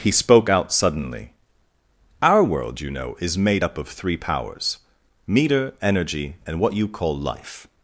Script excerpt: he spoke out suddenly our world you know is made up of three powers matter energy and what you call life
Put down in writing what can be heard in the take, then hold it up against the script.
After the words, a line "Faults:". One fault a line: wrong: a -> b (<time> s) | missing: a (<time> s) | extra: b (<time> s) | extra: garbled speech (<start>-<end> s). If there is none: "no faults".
he spoke out suddenly our world you know is made up of three powers meter energy and what you call life
Faults:
wrong: matter -> meter (5.2 s)